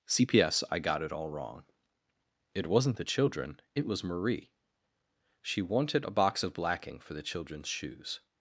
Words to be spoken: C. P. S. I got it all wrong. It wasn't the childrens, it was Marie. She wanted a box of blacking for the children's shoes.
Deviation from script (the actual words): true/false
true